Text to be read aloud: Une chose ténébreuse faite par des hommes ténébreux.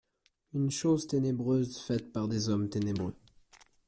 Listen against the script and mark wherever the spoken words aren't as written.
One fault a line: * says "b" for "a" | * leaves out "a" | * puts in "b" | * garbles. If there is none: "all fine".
all fine